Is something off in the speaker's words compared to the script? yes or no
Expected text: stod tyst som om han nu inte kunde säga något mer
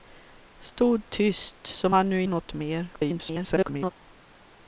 yes